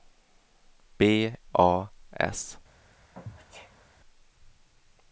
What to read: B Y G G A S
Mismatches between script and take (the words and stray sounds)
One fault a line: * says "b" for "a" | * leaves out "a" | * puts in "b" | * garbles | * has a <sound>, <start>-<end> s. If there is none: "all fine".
* leaves out "Y G G"
* has a sneeze, 3.1-3.8 s